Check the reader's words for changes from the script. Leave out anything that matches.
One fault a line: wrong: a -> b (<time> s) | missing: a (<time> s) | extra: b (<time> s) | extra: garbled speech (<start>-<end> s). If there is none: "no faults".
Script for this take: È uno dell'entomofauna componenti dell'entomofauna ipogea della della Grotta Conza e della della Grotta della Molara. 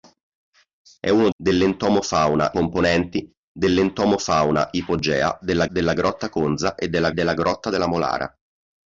no faults